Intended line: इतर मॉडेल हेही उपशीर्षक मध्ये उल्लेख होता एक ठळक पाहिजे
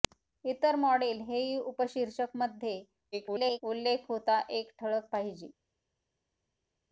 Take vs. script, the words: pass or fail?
fail